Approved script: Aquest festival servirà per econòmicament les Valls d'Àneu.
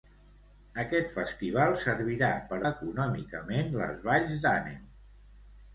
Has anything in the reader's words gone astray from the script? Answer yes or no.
no